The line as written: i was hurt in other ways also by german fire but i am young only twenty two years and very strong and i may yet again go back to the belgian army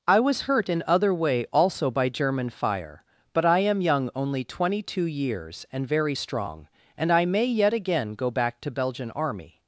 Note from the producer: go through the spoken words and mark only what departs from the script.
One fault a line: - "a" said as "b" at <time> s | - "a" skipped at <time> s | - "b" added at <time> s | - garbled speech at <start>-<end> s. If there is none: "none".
- "ways" said as "way" at 1.1 s
- "the" skipped at 8.7 s